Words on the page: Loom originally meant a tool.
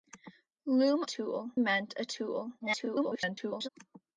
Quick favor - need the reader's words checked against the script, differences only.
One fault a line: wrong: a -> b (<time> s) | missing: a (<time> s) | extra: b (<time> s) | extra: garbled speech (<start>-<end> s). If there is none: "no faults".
wrong: originally -> tool (1.1 s)
extra: garbled speech (2.6-3.7 s)